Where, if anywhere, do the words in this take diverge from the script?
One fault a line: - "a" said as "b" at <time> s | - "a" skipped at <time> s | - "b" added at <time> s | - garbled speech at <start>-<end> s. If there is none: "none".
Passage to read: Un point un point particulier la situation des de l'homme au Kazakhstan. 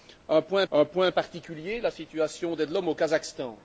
none